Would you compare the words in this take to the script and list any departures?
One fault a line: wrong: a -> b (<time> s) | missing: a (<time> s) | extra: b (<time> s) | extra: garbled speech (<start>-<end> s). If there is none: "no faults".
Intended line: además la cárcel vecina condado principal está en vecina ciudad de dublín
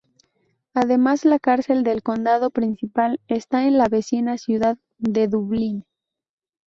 wrong: vecina -> del (1.8 s)
extra: la (3.8 s)